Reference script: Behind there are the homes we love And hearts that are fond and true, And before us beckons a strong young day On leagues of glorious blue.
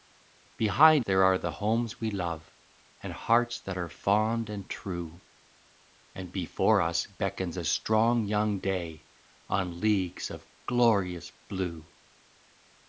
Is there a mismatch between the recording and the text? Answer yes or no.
no